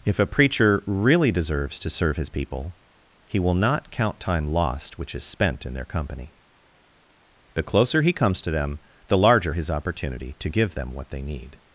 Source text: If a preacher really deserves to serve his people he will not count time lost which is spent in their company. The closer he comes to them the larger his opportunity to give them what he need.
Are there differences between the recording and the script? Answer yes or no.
yes